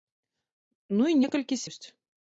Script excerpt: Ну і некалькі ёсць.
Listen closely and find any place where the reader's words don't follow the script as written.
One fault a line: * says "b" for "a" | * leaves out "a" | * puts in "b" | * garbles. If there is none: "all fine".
all fine